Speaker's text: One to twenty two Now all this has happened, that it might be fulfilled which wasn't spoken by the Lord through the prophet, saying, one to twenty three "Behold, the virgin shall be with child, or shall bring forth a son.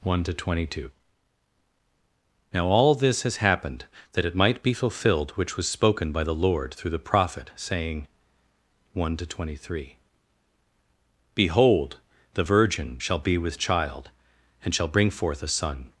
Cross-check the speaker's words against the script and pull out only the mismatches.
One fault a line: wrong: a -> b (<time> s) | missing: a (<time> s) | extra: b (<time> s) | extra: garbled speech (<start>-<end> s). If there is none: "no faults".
wrong: wasn't -> was (5.6 s)
wrong: or -> and (14.6 s)